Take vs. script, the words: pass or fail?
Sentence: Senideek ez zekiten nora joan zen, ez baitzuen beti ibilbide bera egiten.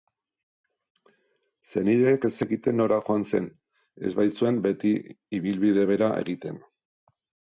pass